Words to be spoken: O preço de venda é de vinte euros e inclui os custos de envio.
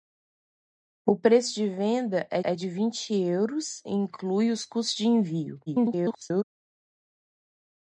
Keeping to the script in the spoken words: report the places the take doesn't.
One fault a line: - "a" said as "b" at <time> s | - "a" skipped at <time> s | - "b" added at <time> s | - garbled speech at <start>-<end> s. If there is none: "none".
- "é" added at 2.4 s
- garbled speech at 5.7-6.4 s